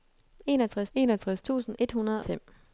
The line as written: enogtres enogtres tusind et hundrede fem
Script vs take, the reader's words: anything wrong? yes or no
no